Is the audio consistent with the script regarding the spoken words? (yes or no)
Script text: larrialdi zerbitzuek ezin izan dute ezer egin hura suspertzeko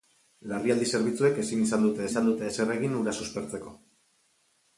no